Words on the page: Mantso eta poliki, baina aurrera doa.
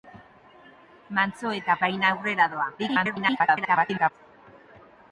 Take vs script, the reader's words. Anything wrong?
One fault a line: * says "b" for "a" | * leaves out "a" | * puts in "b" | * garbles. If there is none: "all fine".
* leaves out "poliki"
* garbles